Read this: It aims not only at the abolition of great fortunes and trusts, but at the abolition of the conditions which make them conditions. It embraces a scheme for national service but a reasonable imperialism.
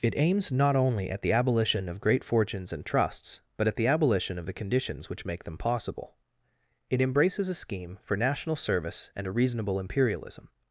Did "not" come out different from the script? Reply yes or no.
no